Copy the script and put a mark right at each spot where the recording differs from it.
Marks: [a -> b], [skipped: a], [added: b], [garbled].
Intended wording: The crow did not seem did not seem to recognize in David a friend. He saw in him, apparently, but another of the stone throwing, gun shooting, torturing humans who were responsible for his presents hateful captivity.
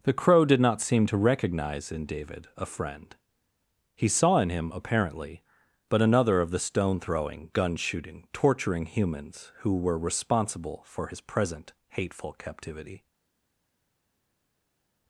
The crow did not seem [skipped: did not seem] to recognize in David a friend. He saw in him, apparently, but another of the stone throwing, gun shooting, torturing humans who were responsible for his [presents -> present] hateful captivity.